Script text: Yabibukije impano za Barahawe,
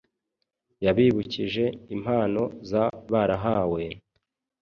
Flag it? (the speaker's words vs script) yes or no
no